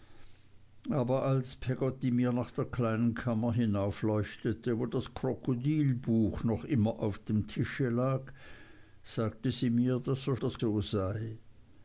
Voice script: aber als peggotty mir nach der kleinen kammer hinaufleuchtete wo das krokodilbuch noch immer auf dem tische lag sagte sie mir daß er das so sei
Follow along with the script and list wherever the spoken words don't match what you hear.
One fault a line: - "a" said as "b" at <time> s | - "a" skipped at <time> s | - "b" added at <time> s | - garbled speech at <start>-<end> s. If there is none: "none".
none